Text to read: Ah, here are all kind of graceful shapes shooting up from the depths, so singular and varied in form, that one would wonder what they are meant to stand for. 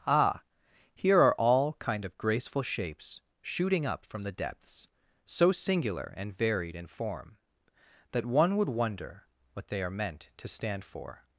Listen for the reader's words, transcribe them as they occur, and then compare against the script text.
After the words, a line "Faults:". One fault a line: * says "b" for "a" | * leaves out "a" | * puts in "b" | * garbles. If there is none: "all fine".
Ah, here are all kind of graceful shapes shooting up from the depths, so singular and varied in form, that one would wonder what they are meant to stand for.
Faults:
all fine